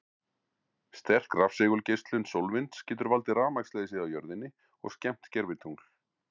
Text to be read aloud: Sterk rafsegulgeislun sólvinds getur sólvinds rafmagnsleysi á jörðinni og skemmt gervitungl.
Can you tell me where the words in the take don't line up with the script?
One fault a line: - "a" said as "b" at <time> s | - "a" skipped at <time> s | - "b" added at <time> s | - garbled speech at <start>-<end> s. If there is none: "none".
- "sólvinds" said as "valdið" at 3.1 s